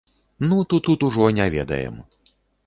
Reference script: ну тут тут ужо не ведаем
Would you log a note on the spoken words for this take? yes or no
no